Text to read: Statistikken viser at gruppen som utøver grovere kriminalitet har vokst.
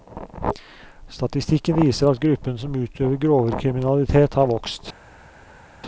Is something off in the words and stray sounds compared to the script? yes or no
no